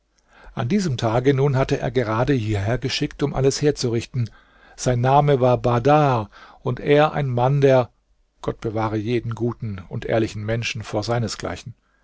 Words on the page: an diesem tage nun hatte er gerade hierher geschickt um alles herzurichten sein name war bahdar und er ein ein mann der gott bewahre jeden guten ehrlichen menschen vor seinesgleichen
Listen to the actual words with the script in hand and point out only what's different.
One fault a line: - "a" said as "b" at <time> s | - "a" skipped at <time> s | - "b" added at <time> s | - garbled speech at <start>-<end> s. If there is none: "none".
- "ein" skipped at 7.3 s
- "und" added at 9.9 s